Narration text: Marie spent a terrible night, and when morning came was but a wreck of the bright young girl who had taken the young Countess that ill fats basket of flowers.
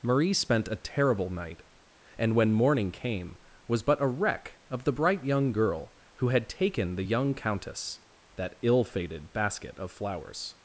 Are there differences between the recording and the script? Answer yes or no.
yes